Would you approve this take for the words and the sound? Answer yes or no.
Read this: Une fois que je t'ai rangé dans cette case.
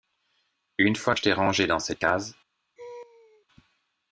no